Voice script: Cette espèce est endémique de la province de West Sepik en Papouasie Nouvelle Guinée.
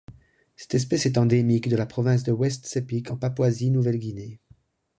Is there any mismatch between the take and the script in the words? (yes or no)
no